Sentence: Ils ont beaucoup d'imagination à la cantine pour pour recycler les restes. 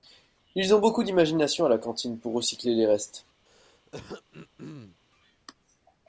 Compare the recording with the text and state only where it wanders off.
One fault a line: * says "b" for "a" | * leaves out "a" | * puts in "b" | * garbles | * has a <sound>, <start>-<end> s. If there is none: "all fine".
* leaves out "pour"
* has a throat clearing, 3.5-5.0 s